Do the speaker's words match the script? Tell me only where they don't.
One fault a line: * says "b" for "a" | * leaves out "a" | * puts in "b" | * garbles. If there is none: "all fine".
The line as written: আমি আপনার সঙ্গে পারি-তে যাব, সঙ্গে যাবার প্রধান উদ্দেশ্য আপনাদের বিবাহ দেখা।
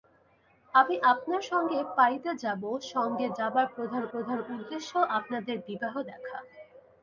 * puts in "প্রধান"